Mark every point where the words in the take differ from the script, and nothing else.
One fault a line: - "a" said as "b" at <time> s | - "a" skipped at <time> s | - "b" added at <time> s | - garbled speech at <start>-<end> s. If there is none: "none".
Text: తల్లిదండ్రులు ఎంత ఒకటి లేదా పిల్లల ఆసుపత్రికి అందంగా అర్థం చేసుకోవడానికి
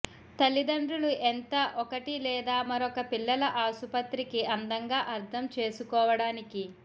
- "మరొక" added at 2.7 s